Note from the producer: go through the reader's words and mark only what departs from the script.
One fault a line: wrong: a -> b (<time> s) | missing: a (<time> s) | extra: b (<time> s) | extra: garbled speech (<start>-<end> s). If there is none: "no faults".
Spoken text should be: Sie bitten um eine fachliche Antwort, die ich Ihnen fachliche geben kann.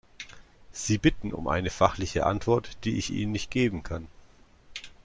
wrong: fachliche -> nicht (3.3 s)